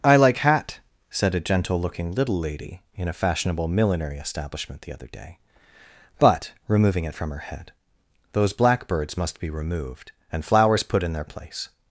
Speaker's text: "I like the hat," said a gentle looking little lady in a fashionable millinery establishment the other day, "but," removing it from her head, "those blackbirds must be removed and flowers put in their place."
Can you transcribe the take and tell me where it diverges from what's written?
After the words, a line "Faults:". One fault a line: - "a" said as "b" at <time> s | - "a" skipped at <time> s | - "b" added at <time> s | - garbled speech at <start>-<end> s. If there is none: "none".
"I like hat," said a gentle looking little lady in a fashionable millinery establishment the other day, "but," removing it from her head, "those blackbirds must be removed and flowers put in their place."
Faults:
- "the" skipped at 0.4 s